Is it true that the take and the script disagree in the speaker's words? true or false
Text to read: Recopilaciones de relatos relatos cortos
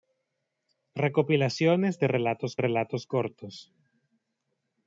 false